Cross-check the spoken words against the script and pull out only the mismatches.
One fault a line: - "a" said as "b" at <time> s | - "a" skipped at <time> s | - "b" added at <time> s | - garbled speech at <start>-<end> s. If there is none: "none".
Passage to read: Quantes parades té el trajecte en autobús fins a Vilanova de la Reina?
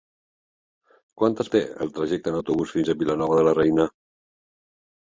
- "parades" skipped at 1.5 s